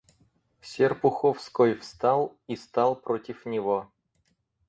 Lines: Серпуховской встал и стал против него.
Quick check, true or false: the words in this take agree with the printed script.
true